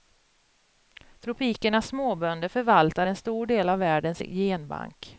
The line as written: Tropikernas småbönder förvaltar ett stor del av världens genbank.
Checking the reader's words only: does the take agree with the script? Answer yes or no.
no